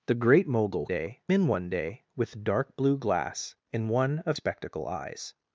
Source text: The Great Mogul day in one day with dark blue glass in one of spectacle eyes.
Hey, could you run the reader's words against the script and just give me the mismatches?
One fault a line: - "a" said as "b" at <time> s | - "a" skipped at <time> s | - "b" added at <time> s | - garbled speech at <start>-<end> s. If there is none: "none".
none